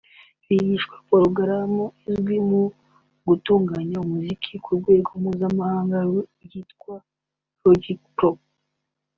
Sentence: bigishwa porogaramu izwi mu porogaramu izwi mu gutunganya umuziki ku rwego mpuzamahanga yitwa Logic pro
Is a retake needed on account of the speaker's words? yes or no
yes